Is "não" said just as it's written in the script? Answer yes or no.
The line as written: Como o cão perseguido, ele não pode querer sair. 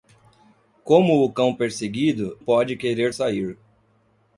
no